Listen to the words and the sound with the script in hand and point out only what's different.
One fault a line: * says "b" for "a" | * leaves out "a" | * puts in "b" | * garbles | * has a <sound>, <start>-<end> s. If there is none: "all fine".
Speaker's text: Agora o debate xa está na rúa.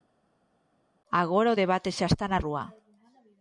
all fine